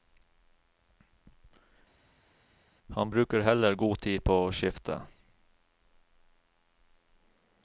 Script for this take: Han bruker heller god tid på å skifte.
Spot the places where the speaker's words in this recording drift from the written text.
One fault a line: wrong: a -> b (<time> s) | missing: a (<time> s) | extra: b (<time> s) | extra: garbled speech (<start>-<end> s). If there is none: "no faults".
no faults